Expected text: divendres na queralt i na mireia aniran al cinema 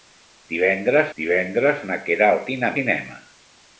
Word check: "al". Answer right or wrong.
wrong